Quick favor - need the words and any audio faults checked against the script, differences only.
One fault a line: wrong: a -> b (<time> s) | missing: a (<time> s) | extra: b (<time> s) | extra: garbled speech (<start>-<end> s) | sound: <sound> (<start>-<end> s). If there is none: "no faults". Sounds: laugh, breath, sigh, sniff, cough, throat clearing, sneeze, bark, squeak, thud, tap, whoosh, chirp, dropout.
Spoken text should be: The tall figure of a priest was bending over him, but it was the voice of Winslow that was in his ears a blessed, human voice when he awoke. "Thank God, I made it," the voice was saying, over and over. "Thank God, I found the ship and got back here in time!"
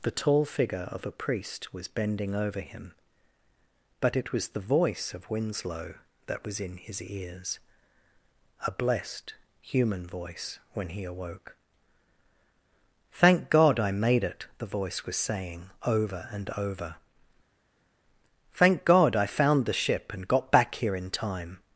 no faults